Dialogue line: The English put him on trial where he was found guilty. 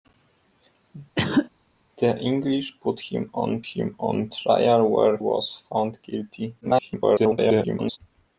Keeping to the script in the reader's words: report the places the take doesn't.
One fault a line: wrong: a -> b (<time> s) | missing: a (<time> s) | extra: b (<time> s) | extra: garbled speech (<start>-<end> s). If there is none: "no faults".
extra: him on (3.6 s)
missing: he (5.2 s)
extra: garbled speech (6.6-8.0 s)